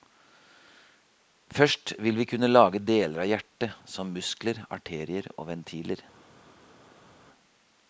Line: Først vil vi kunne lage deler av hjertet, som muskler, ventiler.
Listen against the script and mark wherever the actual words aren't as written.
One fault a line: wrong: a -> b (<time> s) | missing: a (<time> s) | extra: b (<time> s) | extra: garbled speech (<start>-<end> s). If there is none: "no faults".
extra: arterier og (4.8 s)